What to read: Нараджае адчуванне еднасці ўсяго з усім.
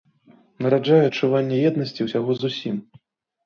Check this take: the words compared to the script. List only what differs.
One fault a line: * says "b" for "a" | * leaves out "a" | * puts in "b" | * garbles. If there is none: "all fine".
all fine